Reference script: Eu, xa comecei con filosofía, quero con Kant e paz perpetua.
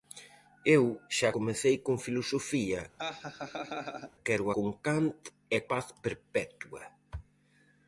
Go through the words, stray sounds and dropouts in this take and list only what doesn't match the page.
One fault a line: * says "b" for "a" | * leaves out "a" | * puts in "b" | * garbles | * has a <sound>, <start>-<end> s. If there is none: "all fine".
* has a laugh, 3.0-4.1 s